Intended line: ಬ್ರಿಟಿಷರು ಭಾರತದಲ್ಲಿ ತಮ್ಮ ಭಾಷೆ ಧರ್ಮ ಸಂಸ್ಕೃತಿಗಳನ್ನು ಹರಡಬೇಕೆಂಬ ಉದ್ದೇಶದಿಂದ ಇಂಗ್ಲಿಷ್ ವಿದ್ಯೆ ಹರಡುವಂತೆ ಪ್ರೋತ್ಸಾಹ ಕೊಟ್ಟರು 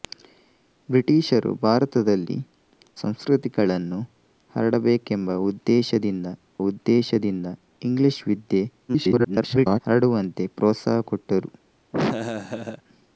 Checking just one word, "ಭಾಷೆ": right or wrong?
wrong